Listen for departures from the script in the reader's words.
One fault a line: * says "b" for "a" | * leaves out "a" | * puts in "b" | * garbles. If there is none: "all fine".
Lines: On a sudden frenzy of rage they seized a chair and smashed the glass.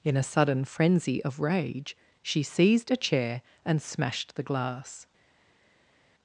* says "In" for "On"
* says "she" for "they"